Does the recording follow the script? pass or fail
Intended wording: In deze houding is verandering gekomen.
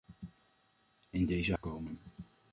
fail